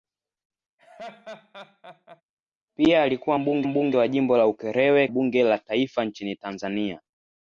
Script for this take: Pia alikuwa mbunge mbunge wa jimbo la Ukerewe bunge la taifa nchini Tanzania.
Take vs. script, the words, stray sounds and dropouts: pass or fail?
fail